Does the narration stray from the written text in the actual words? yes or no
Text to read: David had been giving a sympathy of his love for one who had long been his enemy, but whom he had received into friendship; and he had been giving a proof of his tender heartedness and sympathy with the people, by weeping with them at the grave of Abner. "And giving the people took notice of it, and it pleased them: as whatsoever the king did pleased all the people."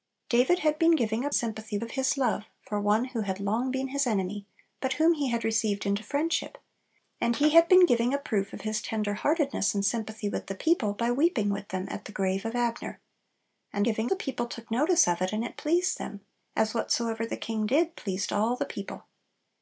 no